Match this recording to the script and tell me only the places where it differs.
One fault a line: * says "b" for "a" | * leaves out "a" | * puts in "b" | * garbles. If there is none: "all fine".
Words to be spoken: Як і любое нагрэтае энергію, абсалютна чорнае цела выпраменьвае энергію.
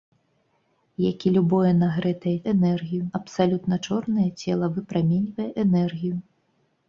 all fine